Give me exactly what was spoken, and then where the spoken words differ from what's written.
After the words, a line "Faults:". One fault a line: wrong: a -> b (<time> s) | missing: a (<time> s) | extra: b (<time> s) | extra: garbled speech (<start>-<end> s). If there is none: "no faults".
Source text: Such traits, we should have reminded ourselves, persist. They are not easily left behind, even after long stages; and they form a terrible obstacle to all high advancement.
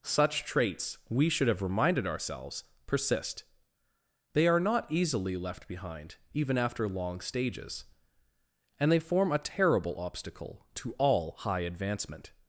Such traits, we should have reminded ourselves, persist. They are not easily left behind, even after long stages; and they form a terrible obstacle to all high advancement.
Faults:
no faults